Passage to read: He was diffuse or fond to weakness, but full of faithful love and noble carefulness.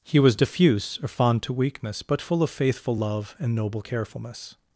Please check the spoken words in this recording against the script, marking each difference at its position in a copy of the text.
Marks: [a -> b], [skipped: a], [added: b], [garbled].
He was diffuse or fond to weakness, but full of faithful love and noble carefulness.